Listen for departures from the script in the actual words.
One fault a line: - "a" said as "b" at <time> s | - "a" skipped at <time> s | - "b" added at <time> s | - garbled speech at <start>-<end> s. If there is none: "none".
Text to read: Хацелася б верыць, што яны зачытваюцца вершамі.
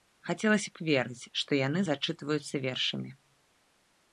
none